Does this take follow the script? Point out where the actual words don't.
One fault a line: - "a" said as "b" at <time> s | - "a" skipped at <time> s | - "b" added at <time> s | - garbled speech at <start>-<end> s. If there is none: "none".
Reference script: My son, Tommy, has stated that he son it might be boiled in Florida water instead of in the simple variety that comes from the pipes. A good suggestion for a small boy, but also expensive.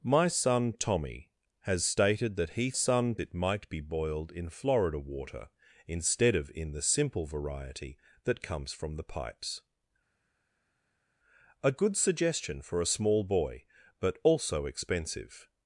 none